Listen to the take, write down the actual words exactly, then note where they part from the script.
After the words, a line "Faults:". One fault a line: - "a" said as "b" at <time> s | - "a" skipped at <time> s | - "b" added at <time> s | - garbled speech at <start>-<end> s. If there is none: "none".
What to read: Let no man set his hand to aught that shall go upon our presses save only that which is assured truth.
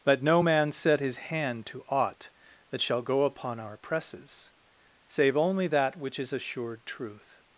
Let no man set his hand to aught that shall go upon our presses save only that which is assured truth.
Faults:
none